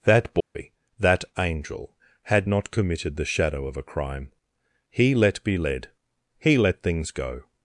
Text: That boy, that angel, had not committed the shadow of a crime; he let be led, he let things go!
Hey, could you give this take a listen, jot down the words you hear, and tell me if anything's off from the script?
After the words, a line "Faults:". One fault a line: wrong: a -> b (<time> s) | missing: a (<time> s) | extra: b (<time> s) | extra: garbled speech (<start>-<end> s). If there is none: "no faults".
That boy, that angel, had not committed the shadow of a crime; he let be led, he let things go!
Faults:
no faults